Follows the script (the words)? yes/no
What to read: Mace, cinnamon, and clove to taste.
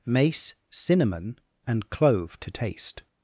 yes